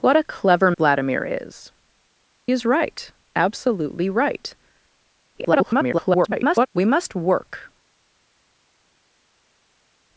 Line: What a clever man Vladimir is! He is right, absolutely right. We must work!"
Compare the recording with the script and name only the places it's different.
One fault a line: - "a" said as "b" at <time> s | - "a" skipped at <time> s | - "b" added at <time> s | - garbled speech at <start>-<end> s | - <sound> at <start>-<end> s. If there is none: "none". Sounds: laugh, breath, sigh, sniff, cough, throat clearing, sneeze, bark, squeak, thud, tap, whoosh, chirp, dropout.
- "man" skipped at 0.7 s
- "He" skipped at 1.7 s
- garbled speech at 5.3-6.7 s